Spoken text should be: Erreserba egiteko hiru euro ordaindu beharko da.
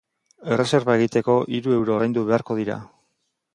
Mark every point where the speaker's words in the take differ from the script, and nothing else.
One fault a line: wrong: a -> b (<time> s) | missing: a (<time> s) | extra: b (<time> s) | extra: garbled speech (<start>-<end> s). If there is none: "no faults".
wrong: da -> dira (2.6 s)